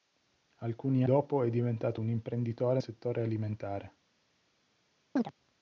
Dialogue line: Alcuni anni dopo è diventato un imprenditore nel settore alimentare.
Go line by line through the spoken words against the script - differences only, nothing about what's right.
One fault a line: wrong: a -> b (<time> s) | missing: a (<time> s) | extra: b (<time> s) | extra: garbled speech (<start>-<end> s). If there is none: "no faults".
missing: anni (1.1 s)
missing: nel (2.8 s)